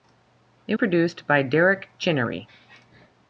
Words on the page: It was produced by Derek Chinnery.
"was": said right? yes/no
no